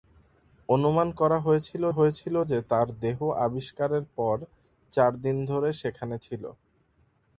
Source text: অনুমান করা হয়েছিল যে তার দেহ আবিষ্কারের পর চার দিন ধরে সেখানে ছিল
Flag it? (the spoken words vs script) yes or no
yes